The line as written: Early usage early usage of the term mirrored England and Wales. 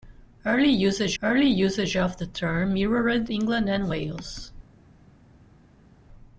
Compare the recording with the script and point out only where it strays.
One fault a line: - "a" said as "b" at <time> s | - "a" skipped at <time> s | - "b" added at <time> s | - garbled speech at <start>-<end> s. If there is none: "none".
none